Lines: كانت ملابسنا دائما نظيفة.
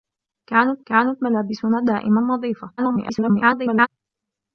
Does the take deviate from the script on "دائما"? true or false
false